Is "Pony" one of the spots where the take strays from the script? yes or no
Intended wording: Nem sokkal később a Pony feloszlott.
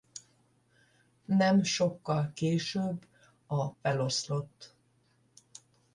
yes